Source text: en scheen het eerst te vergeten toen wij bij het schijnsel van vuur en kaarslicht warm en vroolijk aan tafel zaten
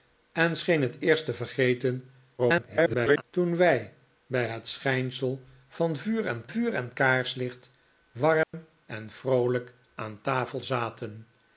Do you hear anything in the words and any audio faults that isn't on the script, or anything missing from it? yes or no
yes